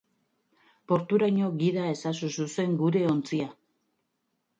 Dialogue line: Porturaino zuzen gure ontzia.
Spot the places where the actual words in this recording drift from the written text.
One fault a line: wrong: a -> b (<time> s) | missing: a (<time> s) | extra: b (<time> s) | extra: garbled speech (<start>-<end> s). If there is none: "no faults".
extra: gida ezazu (1.6 s)